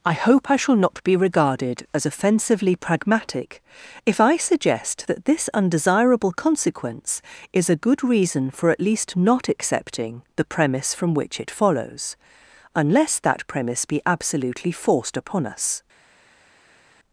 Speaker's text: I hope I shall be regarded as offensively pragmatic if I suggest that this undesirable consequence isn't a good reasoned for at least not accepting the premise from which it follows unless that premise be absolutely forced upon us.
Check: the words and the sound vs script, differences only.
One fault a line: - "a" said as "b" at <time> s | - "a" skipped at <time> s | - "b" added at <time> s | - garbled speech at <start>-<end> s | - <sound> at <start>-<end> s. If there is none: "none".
- "not" added at 0.8 s
- "isn't" said as "is" at 7.5 s
- "reasoned" said as "reason" at 8.0 s